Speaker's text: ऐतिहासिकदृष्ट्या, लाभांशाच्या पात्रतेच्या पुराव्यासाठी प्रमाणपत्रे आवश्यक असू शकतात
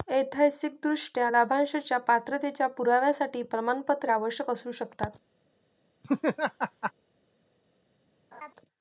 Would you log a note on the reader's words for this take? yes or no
no